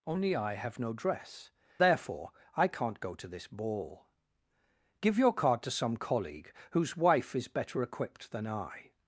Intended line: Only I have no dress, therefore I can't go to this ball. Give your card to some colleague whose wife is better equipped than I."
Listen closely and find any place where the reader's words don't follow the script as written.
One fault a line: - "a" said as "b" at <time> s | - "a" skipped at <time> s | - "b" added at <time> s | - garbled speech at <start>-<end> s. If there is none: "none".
none